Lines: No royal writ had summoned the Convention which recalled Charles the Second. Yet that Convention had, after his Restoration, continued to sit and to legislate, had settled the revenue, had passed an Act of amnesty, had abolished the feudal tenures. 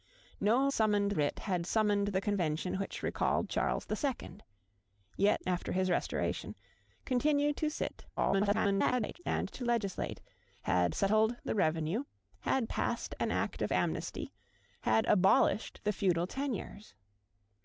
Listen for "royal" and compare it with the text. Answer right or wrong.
wrong